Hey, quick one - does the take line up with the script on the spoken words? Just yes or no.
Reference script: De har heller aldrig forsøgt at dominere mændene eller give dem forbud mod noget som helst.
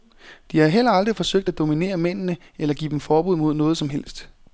yes